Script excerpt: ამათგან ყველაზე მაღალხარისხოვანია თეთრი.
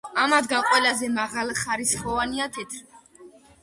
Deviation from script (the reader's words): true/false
false